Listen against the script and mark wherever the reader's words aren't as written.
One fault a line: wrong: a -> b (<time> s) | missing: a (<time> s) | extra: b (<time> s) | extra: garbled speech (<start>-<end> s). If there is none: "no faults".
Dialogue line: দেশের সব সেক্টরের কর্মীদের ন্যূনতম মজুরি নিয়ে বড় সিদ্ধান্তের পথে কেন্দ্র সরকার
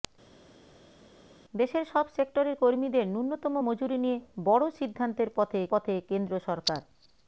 extra: পথে (5.7 s)